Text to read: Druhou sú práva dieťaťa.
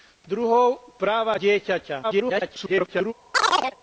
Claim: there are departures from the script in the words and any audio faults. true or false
true